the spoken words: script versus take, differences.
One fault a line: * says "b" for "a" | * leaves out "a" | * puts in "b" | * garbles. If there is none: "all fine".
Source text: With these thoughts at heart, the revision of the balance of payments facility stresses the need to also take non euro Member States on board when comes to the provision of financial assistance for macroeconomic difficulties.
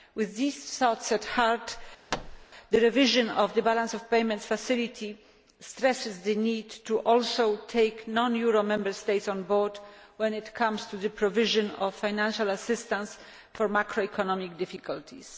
* puts in "it"